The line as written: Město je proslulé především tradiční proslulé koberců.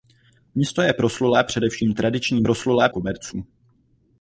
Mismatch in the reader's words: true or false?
false